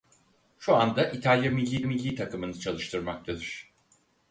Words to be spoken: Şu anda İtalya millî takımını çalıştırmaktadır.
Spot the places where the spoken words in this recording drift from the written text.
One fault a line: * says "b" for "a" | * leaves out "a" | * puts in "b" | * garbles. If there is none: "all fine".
* puts in "millî"